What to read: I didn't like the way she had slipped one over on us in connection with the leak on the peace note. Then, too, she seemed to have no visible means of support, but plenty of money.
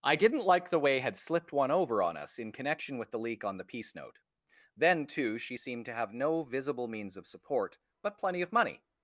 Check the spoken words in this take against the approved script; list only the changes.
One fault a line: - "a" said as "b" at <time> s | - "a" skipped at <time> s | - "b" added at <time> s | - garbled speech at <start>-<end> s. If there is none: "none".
- "she" skipped at 1.0 s